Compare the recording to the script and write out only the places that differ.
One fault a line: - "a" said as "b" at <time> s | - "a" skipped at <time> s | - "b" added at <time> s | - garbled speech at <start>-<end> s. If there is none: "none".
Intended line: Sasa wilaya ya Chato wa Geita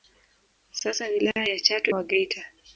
none